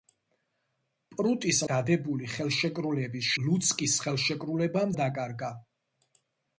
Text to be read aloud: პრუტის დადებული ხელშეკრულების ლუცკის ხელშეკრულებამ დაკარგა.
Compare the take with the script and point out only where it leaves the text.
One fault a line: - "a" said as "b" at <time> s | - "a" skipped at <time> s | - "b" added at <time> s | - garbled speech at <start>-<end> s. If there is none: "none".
none